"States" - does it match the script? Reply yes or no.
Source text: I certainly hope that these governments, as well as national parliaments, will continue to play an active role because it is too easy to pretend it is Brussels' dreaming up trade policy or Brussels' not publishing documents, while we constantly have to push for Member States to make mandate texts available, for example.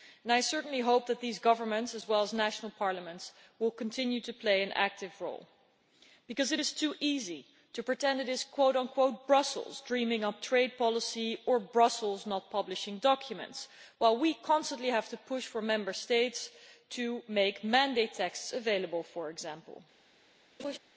yes